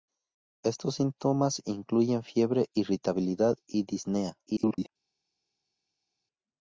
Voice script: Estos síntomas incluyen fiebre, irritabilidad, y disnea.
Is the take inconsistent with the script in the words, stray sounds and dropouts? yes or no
yes